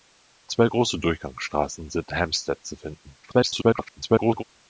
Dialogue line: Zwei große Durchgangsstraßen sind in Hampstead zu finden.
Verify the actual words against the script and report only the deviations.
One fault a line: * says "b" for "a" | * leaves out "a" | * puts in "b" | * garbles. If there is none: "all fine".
* leaves out "in"
* garbles